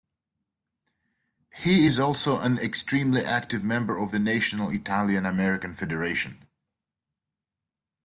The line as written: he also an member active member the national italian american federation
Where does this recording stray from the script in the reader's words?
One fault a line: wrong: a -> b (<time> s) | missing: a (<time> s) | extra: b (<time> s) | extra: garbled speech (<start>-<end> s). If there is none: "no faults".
extra: is (1.8 s)
wrong: member -> extremely (2.6 s)
extra: of (4.0 s)